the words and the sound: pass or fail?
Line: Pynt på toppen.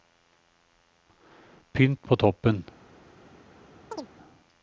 fail